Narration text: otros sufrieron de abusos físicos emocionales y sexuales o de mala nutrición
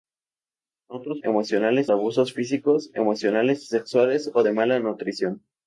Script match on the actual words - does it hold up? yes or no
no